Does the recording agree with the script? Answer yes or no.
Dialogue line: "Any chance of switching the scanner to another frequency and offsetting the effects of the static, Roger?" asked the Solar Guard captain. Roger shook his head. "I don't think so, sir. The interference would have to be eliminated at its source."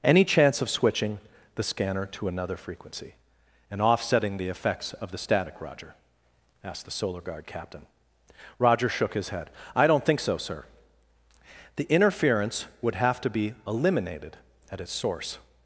yes